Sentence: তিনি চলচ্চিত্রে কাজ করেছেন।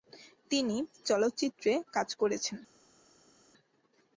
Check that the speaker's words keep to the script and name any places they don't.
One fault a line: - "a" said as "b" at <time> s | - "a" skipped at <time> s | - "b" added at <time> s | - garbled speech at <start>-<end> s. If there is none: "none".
none